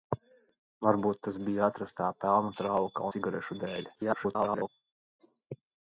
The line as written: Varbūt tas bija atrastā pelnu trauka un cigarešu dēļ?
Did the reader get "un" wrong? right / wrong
wrong